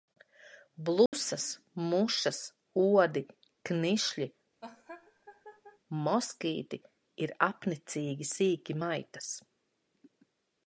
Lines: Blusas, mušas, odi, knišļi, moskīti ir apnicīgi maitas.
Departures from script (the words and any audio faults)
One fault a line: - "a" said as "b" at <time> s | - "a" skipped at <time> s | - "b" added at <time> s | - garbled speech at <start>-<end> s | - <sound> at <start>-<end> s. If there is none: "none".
- dropout at 1.1-1.1 s
- laugh at 4.6-5.8 s
- "sīki" added at 8.3 s